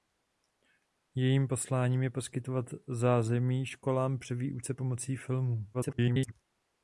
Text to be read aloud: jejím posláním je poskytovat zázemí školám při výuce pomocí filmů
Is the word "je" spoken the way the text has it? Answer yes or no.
yes